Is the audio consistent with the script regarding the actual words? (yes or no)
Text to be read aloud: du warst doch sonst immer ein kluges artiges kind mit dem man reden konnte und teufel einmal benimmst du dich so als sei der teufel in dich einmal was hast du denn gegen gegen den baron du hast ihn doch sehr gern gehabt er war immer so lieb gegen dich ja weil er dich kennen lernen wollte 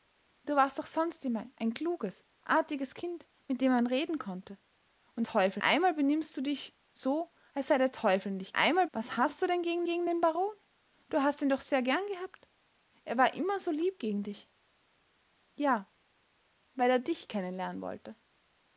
yes